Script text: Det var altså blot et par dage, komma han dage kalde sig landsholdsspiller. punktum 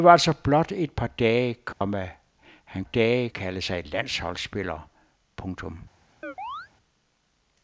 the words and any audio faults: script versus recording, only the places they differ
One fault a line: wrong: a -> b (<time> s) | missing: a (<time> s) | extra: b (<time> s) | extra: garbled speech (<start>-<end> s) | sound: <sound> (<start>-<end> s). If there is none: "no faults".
sound: dropout (1.7-1.8 s)
sound: chirp (6.2-6.7 s)